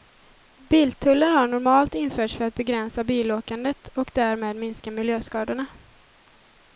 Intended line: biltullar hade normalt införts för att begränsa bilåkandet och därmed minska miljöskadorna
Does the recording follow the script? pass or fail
fail